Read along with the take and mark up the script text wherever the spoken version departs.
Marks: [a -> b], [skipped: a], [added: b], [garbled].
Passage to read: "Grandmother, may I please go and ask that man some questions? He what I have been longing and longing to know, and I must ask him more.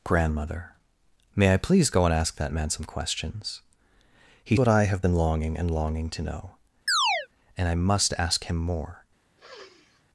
"Grandmother, may I please go and ask that man some questions? He what I have been longing and longing to know, and I must ask him more.